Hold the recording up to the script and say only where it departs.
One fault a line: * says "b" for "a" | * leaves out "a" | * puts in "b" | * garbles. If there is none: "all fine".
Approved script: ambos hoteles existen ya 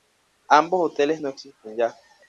* puts in "no"